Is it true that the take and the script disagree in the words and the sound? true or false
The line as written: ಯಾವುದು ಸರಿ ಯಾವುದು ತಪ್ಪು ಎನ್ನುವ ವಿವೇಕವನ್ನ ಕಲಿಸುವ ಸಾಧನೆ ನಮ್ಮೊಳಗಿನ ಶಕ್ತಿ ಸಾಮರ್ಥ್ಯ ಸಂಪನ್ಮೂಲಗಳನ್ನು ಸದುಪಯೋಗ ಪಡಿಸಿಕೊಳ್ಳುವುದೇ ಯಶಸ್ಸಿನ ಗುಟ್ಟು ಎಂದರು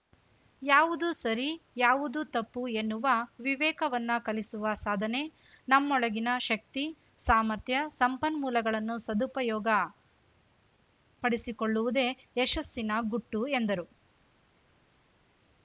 false